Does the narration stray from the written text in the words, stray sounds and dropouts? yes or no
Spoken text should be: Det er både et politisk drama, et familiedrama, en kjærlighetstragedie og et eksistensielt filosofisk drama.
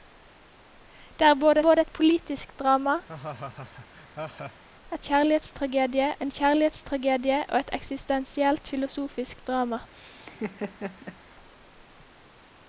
yes